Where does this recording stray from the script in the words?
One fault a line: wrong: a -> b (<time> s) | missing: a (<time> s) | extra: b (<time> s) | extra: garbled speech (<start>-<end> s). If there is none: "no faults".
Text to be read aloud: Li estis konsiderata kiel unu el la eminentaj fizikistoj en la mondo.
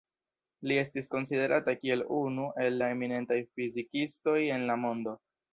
no faults